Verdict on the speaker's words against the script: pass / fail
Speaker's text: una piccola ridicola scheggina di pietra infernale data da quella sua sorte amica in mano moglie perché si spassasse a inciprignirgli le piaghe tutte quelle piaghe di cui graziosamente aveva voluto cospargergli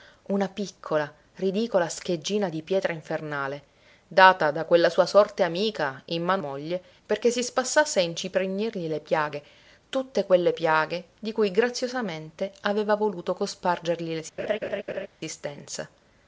pass